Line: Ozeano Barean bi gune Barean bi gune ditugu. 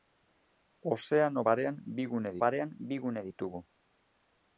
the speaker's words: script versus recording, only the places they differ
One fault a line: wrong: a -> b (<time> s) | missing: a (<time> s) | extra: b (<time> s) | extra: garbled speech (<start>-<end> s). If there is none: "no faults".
no faults